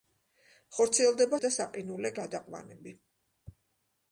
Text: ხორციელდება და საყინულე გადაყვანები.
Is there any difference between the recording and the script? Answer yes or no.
no